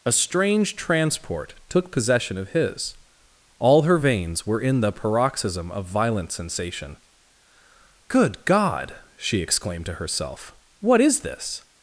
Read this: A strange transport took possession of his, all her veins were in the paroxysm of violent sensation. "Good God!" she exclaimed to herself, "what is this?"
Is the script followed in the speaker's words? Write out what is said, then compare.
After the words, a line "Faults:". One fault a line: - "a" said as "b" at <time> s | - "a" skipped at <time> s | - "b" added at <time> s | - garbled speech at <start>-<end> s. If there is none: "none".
A strange transport took possession of his, all her veins were in the paroxysm of violent sensation. "Good God!" she exclaimed to herself, "what is this?"
Faults:
none